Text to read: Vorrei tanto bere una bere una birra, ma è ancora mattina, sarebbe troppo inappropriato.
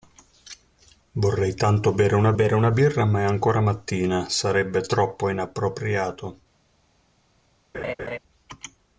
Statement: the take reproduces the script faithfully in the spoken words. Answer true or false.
true